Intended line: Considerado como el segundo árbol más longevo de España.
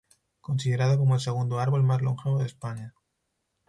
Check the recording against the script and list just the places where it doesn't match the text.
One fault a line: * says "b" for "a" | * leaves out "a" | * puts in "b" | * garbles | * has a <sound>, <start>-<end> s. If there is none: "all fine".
all fine